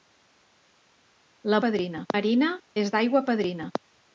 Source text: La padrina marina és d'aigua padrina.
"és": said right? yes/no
yes